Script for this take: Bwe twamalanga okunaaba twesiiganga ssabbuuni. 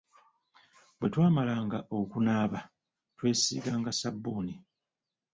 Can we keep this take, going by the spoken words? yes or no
yes